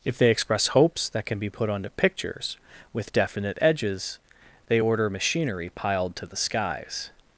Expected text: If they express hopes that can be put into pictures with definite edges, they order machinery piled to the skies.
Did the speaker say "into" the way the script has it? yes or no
no